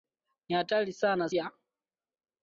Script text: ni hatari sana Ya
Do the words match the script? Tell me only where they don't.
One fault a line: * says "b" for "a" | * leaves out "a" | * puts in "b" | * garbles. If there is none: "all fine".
all fine